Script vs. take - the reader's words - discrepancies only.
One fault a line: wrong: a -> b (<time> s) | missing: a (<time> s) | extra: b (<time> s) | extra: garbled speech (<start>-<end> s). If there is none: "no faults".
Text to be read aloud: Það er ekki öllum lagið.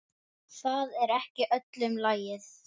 no faults